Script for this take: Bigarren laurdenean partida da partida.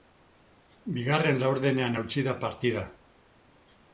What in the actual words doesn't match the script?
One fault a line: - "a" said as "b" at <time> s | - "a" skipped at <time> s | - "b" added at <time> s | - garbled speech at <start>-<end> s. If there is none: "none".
- "partida" said as "hautsi" at 2.0 s